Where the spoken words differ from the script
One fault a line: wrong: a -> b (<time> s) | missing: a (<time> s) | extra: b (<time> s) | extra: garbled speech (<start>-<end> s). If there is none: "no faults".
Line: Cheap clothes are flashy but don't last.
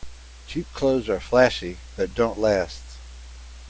no faults